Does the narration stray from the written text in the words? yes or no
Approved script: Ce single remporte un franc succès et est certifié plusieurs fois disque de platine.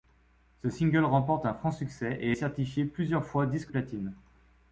yes